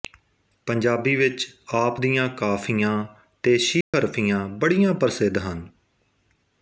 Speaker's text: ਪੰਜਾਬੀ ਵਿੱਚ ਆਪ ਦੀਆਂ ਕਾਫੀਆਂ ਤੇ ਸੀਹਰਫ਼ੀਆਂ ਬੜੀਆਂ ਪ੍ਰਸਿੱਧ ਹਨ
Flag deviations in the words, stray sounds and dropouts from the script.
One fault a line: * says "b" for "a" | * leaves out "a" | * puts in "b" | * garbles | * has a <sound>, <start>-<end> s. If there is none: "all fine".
* has a dropout, 3.8-3.9 s